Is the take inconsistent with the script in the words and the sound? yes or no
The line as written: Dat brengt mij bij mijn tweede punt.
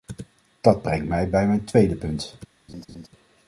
yes